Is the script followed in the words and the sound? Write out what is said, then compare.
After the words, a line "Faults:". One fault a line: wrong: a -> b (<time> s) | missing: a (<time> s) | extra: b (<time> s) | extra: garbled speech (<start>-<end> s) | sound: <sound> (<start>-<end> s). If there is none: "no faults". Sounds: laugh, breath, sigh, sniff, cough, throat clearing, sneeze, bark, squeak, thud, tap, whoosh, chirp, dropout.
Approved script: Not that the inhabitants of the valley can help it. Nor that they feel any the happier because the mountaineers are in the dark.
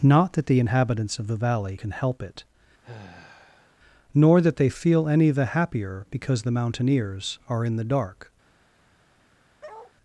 Not that the inhabitants of the valley can help it. Nor that they feel any the happier because the mountaineers are in the dark.
Faults:
sound: sigh (2.8-3.8 s)
sound: bark (9.6-9.9 s)